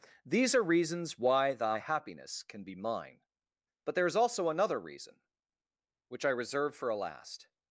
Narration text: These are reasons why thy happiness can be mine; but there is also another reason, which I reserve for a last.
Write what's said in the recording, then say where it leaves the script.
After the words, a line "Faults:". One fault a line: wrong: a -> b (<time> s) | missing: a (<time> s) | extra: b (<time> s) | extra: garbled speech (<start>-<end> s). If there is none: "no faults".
These are reasons why thy happiness can be mine; but there is also another reason, which I reserve for a last.
Faults:
no faults